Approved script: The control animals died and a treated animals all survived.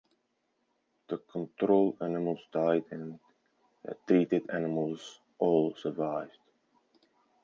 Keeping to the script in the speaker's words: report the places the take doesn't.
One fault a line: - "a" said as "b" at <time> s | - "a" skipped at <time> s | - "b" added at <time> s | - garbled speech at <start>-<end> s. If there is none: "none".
- "a" said as "the" at 3.8 s